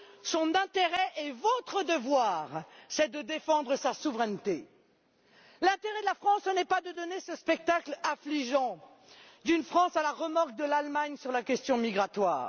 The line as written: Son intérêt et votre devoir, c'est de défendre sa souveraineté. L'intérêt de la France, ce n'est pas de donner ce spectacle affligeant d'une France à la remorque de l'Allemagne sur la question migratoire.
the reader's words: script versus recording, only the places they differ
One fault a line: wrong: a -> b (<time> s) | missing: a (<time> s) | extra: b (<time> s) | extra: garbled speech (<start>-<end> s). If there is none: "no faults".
no faults